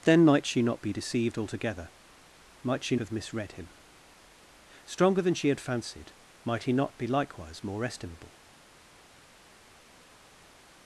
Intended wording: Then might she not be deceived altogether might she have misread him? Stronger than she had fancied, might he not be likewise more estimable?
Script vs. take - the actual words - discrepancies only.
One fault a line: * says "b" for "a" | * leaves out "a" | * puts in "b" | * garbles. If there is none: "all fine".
all fine